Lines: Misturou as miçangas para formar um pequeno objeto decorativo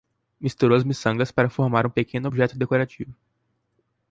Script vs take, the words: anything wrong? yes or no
no